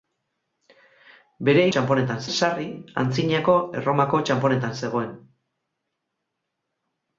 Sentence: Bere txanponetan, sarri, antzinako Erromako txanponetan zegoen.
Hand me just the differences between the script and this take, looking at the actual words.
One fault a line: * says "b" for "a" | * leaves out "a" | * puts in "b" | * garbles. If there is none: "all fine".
all fine